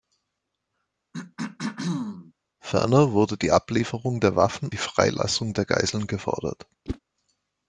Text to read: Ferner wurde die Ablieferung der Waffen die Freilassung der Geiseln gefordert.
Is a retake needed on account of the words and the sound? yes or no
yes